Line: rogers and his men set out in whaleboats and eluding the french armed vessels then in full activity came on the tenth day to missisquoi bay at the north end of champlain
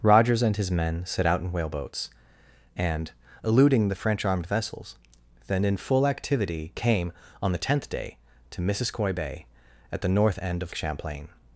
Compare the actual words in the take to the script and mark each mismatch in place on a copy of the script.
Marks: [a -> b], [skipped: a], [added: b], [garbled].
rogers and his men set out in whaleboats and eluding the french armed vessels then in full activity came on the tenth day to missisquoi bay at the north end of champlain